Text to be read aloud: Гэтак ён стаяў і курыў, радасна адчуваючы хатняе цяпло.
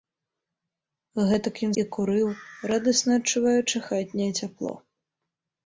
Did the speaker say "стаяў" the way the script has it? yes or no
no